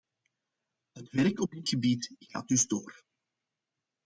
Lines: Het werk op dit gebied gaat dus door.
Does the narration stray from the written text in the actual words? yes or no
no